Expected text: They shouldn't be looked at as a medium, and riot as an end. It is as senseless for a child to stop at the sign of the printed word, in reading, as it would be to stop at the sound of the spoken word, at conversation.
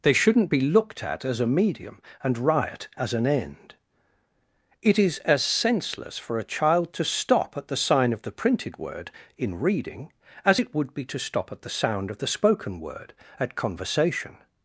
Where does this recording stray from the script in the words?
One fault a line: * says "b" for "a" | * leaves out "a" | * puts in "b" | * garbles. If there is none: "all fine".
all fine